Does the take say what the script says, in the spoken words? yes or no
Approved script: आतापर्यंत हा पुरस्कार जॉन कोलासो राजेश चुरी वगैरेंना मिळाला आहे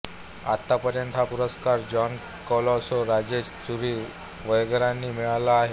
yes